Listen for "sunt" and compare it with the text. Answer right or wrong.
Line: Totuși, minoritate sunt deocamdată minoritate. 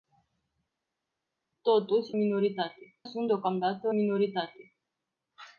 right